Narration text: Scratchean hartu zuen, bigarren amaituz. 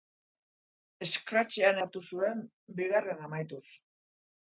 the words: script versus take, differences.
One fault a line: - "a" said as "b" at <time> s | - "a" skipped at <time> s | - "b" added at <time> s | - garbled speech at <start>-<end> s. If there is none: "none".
none